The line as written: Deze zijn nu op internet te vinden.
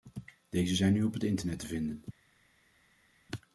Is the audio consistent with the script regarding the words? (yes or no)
no